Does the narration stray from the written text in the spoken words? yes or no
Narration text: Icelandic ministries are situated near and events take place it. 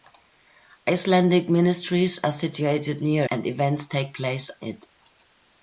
no